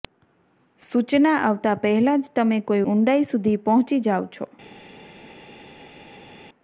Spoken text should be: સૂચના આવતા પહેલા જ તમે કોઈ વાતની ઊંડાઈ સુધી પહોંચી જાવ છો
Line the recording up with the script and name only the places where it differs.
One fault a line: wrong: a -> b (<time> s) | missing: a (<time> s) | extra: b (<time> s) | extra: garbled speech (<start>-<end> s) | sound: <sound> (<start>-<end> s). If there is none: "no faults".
missing: વાતની (2.8 s)